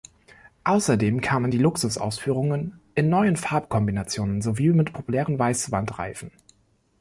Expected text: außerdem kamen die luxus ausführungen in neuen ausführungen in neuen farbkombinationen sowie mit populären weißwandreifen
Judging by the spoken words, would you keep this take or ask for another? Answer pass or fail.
fail